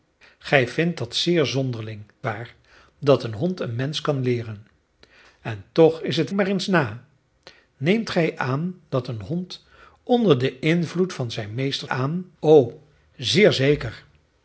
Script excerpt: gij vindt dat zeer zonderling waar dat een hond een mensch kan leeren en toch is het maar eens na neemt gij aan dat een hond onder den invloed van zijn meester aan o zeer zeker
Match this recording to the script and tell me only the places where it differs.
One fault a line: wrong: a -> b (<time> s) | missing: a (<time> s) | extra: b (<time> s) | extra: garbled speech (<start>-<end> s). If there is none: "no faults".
no faults